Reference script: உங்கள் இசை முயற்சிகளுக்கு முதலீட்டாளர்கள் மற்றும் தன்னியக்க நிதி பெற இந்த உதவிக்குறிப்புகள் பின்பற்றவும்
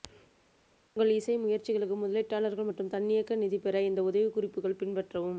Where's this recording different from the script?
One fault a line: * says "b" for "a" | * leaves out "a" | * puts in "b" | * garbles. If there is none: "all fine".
all fine